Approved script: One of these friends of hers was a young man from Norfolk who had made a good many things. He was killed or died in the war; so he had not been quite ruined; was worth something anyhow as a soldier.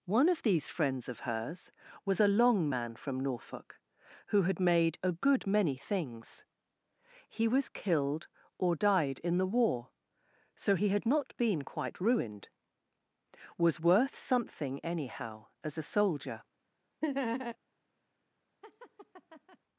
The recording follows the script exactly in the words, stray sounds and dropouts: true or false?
false